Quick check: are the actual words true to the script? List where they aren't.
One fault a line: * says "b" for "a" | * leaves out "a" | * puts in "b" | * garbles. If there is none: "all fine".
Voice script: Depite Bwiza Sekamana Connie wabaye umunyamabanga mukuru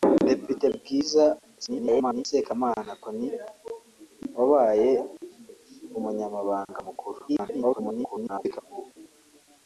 * garbles
* garbles